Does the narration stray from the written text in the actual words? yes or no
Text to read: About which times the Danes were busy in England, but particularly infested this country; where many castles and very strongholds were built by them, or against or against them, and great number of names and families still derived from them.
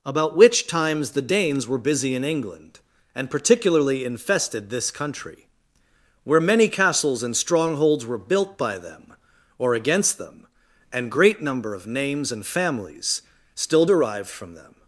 yes